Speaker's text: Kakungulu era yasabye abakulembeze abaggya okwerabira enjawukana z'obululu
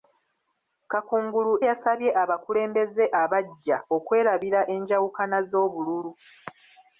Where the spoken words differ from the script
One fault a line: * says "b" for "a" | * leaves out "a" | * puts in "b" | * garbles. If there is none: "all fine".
* leaves out "era"